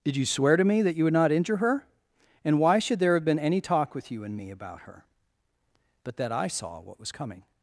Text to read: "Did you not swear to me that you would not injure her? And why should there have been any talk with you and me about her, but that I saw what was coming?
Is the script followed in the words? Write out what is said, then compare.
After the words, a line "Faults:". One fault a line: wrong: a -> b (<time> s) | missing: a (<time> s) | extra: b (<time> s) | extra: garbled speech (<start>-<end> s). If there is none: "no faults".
"Did you swear to me that you would not injure her? And why should there have been any talk with you and me about her, but that I saw what was coming?
Faults:
missing: not (0.2 s)